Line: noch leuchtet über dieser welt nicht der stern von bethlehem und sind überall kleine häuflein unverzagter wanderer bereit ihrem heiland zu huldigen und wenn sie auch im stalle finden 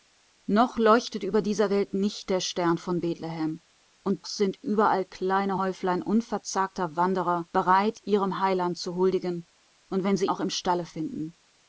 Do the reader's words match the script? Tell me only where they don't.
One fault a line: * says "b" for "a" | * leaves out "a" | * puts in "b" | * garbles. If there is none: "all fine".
all fine